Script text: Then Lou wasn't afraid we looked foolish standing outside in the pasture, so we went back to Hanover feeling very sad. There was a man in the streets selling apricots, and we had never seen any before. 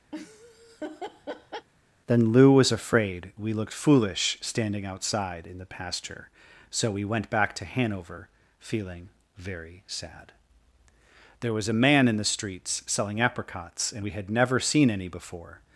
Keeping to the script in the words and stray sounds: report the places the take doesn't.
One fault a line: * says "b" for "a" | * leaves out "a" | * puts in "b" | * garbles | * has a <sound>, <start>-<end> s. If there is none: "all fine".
* has a laugh, 0.1-1.7 s
* says "was" for "wasn't"